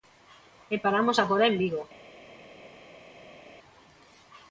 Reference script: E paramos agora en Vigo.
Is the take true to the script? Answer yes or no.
yes